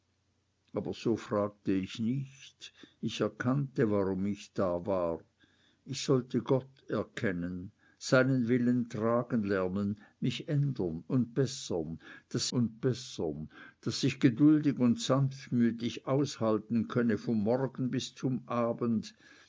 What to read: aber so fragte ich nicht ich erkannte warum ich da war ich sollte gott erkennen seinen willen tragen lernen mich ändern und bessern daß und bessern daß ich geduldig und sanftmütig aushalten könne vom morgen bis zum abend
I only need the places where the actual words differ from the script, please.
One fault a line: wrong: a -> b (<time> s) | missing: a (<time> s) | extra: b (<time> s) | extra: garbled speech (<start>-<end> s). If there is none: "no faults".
no faults